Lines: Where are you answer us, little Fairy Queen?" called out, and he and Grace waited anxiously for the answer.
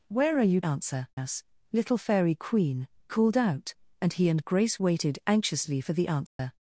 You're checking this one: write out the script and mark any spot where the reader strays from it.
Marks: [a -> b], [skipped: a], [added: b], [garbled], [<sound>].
Where are you answer us, little Fairy Queen?" called out, and he and Grace waited anxiously for the answer. [dropout]